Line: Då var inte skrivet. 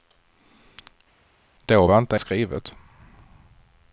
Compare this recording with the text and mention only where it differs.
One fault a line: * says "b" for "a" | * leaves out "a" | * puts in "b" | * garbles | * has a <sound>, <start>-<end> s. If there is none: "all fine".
all fine